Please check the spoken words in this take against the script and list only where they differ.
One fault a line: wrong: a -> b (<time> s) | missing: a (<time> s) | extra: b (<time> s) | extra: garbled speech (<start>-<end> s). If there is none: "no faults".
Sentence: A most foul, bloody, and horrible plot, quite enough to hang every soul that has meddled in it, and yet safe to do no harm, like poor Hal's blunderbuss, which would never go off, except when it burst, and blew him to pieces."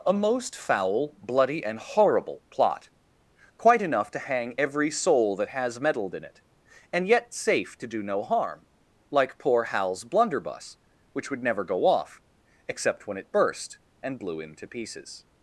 no faults